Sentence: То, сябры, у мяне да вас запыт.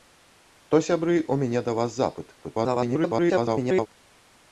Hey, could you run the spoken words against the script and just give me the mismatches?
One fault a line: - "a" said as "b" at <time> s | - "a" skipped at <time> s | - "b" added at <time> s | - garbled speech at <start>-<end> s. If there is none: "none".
- garbled speech at 2.4-3.9 s